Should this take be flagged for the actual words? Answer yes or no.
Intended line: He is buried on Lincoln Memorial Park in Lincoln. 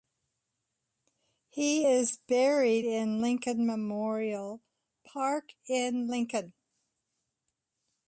yes